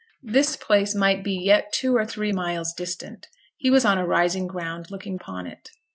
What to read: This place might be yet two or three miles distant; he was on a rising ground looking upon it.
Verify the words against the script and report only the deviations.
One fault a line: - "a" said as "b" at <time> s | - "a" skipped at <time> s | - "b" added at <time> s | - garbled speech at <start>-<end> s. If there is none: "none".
none